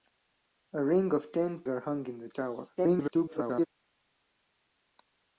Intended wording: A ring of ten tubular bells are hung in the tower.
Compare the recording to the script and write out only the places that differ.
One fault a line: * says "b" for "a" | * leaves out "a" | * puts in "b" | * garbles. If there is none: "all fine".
* leaves out "tubular bells"
* garbles